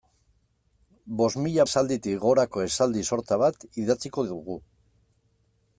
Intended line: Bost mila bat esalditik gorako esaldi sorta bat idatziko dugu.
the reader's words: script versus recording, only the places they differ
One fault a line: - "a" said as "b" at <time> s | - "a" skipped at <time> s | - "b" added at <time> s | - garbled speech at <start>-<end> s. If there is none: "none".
- "bat" skipped at 1.6 s